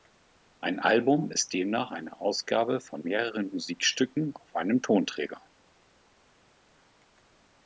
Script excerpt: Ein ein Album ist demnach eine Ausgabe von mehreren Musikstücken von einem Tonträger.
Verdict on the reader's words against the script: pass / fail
fail